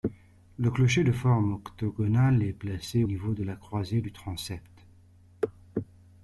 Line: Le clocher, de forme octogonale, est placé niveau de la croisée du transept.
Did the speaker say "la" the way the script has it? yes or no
yes